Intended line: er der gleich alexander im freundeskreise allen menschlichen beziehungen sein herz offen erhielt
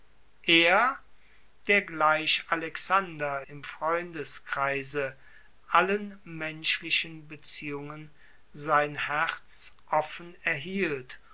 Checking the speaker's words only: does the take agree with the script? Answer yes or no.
yes